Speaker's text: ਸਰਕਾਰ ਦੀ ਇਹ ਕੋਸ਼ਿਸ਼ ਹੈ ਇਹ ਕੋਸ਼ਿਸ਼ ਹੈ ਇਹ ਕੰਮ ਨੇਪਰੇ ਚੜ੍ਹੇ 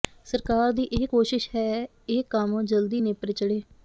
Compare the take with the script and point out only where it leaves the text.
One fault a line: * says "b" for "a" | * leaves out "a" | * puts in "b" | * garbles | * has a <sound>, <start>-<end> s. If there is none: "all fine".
* says "ਕੰਮ ਜਲਦੀ" for "ਕੋਸ਼ਿਸ਼ ਹੈ ਇਹ ਕੰਮ"